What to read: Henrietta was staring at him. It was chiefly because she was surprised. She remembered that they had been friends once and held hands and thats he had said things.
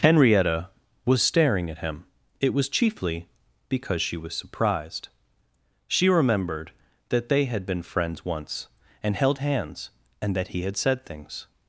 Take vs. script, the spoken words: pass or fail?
fail